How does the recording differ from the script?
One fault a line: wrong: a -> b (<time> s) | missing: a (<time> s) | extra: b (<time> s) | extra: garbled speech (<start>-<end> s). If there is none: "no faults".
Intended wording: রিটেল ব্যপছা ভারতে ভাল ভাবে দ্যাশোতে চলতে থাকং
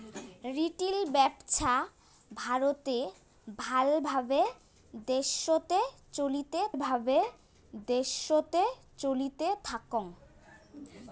extra: ভাবে দ্যাশোতে চলতে (6.8 s)